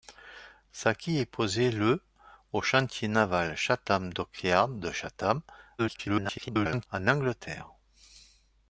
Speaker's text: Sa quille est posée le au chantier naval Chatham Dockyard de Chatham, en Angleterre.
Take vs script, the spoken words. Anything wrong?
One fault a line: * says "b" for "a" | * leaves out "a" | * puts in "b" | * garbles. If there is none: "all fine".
* garbles